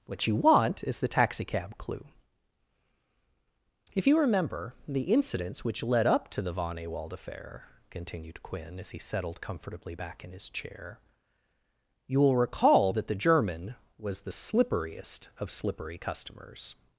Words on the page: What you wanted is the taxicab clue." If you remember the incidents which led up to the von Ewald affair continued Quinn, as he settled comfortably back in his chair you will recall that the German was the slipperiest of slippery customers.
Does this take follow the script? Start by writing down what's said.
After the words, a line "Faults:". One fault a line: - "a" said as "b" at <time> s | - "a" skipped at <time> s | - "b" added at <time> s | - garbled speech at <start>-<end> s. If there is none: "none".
What you want is the taxicab clue." If you remember the incidents which led up to the von Ewald affair continued Quinn, as he settled comfortably back in his chair you will recall that the German was the slipperiest of slippery customers.
Faults:
- "wanted" said as "want" at 0.3 s